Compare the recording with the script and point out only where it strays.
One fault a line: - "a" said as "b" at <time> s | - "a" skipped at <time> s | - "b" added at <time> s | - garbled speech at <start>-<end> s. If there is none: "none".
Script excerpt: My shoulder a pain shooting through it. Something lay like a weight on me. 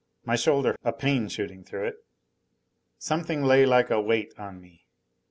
none